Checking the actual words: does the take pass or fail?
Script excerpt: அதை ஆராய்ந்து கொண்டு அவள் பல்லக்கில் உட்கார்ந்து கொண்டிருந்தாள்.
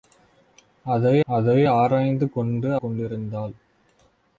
fail